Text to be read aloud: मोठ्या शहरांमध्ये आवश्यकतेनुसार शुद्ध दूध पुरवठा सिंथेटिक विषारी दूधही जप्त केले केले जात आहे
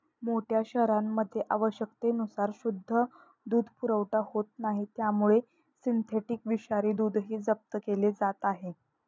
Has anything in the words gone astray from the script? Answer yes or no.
yes